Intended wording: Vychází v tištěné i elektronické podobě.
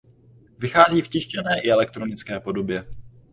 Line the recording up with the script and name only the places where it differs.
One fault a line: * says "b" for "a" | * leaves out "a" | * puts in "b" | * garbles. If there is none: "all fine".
all fine